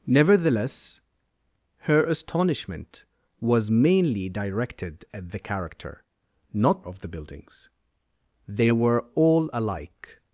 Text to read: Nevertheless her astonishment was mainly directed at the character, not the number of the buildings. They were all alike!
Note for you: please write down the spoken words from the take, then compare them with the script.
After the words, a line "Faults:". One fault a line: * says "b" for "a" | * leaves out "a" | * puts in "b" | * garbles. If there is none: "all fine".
Nevertheless her astonishment was mainly directed at the character, not of the buildings. They were all alike!
Faults:
* leaves out "the number"